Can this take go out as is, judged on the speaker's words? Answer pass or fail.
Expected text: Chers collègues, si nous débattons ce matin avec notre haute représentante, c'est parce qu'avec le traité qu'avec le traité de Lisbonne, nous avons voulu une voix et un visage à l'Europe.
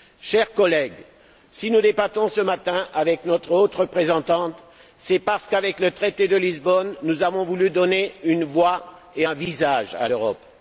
fail